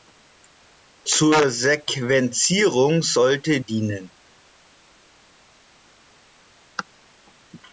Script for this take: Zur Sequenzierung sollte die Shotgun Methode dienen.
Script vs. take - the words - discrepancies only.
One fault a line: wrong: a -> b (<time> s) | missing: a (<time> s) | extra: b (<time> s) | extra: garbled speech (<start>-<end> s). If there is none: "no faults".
missing: die Shotgun Methode (3.6 s)